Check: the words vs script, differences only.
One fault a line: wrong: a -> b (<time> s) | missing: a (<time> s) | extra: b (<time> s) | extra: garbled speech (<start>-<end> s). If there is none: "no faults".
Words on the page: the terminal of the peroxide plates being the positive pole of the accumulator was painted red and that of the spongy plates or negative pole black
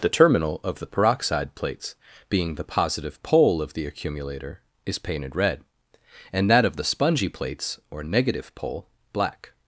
wrong: was -> is (4.8 s)